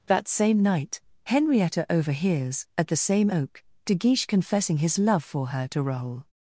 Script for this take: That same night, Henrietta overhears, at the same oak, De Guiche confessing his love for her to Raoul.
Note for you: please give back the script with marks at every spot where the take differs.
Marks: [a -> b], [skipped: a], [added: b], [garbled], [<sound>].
That same night, Henrietta overhears, at the same oak, De Guiche confessing his love for her to Raoul.